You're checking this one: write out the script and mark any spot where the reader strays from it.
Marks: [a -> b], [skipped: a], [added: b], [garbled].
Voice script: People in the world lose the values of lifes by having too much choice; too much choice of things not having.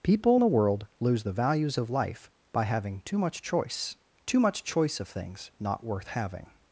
People in the world lose the values of [lifes -> life] by having too much choice; too much choice of things not [added: worth] having.